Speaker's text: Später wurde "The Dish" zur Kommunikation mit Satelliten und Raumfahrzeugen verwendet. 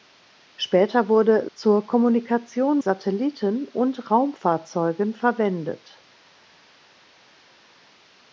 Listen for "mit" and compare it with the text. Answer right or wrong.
wrong